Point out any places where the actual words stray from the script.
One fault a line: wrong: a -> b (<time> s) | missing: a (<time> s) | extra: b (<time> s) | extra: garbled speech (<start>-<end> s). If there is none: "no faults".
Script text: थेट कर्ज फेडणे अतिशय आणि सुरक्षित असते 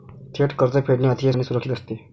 no faults